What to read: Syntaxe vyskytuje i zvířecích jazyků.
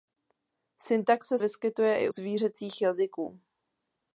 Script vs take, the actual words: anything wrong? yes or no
no